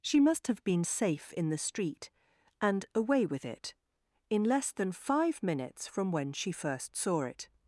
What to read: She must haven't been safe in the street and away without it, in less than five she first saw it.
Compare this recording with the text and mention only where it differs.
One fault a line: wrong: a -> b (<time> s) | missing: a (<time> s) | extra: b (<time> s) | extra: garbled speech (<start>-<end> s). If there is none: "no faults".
wrong: haven't -> have (0.5 s)
wrong: without -> with (3.2 s)
extra: minutes from when (5.4 s)